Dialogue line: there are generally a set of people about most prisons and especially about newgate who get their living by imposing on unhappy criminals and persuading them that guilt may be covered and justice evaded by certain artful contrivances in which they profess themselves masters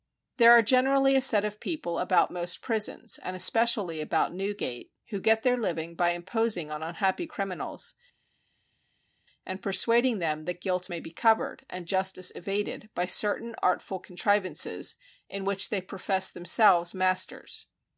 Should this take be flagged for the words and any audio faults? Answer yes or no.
no